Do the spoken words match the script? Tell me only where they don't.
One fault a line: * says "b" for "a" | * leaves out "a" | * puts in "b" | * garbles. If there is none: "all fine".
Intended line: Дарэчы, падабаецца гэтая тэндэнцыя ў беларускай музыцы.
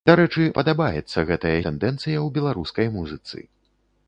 all fine